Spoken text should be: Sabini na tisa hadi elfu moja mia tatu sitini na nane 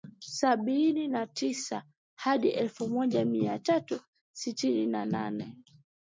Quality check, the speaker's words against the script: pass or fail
pass